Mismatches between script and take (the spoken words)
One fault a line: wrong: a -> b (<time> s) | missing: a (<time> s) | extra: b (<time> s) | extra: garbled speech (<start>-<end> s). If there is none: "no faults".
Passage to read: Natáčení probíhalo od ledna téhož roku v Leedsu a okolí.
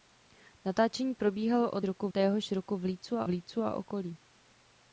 wrong: ledna -> roku (1.8 s)
extra: Leedsu a (3.3 s)